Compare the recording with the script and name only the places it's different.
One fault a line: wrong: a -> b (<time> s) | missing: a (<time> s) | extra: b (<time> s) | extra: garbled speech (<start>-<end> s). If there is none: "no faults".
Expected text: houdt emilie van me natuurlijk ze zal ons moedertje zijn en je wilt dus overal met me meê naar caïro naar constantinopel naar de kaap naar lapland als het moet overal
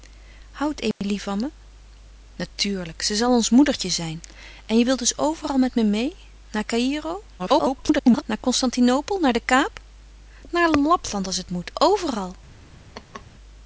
extra: garbled speech (7.4-8.2 s)